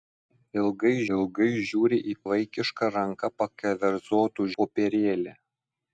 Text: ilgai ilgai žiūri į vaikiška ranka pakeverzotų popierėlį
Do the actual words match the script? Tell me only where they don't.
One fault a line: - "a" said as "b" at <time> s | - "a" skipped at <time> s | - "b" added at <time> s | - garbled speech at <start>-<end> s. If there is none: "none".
none